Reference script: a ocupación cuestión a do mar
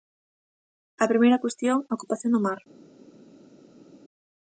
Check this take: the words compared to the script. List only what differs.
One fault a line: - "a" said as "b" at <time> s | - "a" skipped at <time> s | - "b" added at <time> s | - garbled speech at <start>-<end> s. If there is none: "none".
- "ocupación" said as "primeira" at 1.1 s
- "ocupación" added at 2.0 s